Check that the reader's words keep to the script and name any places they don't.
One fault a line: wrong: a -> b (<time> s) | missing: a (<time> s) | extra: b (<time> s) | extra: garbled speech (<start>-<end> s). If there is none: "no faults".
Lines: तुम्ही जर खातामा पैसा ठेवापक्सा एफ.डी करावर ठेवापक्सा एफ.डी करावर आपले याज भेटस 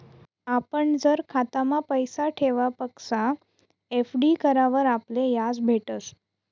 wrong: तुम्ही -> आपण (0.5 s)
missing: ठेवापक्सा एफ.डी करावर (4.8 s)